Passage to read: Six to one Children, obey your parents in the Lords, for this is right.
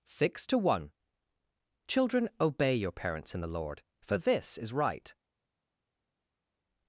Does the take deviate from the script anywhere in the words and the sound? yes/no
yes